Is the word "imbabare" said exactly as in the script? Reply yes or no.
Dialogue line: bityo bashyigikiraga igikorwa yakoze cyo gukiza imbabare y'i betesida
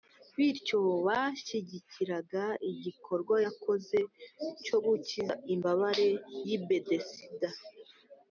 yes